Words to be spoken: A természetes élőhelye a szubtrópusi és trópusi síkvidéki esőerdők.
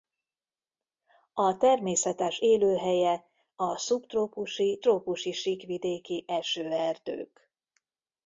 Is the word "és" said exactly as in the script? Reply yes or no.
no